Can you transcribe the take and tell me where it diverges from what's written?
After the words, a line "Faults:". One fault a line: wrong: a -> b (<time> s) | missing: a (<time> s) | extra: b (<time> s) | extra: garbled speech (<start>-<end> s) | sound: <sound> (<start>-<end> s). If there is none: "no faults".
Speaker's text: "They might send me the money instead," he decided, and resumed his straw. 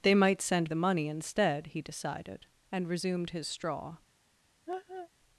"They might send the money instead," he decided, and resumed his straw.
Faults:
missing: me (0.7 s)
sound: laugh (4.7-5.1 s)